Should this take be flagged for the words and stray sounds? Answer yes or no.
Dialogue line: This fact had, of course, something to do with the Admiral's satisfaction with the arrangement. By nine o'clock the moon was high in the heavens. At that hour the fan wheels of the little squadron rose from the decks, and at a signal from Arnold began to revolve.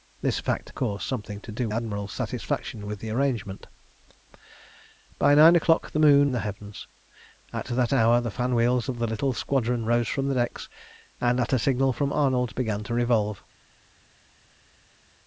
yes